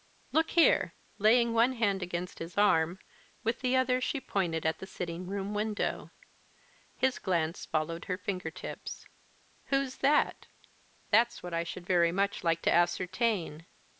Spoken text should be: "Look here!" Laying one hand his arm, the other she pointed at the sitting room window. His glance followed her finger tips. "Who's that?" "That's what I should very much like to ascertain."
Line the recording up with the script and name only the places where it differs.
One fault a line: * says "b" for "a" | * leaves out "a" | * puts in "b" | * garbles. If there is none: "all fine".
* puts in "against"
* puts in "with"